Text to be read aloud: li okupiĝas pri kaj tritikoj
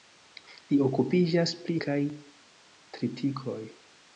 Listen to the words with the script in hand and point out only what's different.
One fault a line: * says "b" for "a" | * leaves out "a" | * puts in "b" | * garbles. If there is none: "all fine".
all fine